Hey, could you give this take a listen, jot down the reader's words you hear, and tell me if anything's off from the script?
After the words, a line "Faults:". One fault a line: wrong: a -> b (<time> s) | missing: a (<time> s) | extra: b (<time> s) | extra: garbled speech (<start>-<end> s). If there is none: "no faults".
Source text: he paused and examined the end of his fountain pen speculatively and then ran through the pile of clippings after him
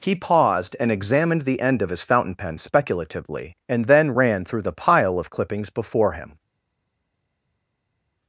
he paused and examined the end of his fountain pen speculatively and then ran through the pile of clippings before him
Faults:
wrong: after -> before (5.7 s)